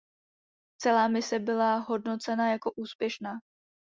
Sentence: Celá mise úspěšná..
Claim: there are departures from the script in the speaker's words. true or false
true